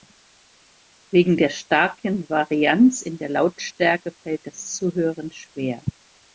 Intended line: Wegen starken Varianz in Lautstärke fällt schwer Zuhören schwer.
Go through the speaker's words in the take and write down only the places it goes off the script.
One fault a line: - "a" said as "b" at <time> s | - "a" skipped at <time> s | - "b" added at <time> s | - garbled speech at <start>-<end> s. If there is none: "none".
- "der" added at 1.4 s
- "der" added at 3.2 s
- "schwer" said as "das" at 4.5 s